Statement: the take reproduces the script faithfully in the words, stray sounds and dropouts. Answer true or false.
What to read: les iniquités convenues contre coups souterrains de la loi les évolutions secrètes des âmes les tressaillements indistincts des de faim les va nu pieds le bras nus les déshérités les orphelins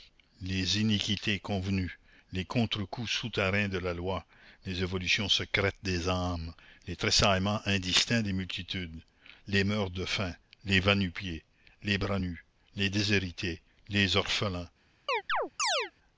false